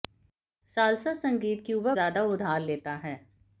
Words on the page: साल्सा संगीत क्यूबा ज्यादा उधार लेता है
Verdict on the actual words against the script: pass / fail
pass